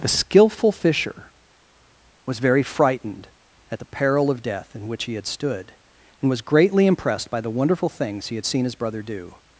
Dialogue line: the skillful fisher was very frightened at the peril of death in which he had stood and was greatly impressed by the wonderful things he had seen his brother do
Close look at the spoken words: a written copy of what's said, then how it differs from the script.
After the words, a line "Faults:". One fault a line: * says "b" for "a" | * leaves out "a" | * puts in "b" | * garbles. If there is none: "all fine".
the skillful fisher was very frightened at the peril of death in which he had stood and was greatly impressed by the wonderful things he had seen his brother do
Faults:
all fine